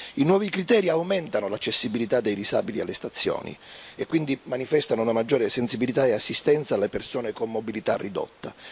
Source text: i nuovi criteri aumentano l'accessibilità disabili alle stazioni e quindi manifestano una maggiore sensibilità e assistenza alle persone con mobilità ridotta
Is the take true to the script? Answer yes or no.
no